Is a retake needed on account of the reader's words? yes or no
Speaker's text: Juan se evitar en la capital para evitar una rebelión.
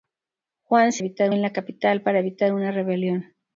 no